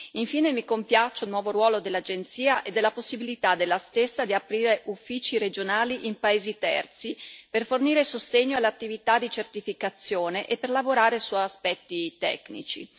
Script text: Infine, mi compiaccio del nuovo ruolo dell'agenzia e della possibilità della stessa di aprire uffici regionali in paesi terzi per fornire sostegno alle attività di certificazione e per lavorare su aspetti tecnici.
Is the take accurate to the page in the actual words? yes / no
no